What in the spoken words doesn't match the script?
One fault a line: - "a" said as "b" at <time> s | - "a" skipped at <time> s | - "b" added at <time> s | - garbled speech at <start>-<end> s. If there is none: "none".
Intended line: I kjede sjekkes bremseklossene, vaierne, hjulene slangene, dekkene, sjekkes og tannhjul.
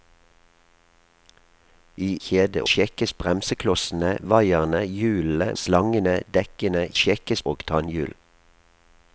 none